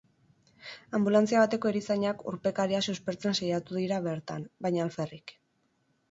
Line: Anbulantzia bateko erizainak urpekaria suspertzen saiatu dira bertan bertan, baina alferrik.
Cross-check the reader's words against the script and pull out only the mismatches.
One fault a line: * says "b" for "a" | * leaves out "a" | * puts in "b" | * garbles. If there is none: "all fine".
* leaves out "bertan"